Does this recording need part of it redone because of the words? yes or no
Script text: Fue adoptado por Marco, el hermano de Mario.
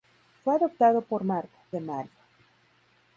yes